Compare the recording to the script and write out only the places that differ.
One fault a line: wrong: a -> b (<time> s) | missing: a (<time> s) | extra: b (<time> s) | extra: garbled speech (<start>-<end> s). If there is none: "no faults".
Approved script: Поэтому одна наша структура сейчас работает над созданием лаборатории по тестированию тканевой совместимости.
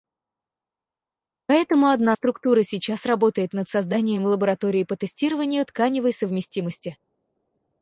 missing: наша (2.1 s)